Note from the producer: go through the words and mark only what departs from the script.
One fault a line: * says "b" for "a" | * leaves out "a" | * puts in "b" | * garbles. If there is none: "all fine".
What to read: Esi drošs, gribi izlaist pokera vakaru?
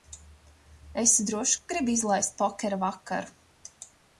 * puts in "ka"